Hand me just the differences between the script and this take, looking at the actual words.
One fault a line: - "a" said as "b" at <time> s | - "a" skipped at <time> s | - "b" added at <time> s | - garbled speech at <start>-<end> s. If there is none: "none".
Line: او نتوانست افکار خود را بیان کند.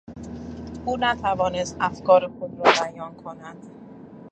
none